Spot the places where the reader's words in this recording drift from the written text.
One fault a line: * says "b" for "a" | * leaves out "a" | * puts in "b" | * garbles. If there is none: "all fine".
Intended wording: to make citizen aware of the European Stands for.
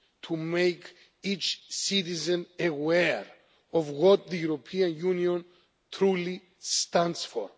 * puts in "each"
* puts in "what"
* puts in "Union truly"